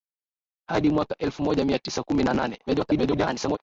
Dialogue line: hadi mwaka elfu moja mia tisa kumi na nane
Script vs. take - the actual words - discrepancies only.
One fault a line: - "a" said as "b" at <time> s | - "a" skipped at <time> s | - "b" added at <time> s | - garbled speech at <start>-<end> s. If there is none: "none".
- garbled speech at 2.7-3.6 s